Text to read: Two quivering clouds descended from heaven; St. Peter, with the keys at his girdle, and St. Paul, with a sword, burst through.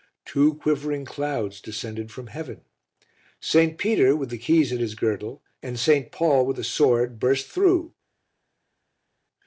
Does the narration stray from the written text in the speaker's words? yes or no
no